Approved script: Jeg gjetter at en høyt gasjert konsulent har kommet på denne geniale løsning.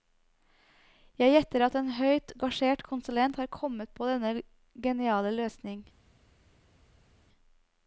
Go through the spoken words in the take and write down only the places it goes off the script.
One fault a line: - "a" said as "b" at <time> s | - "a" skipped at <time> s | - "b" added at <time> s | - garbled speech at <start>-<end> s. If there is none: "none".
none